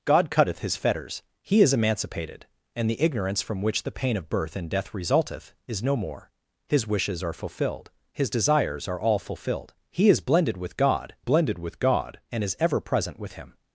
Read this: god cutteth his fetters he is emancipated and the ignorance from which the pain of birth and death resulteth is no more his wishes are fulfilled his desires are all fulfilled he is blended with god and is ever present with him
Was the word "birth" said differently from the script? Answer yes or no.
no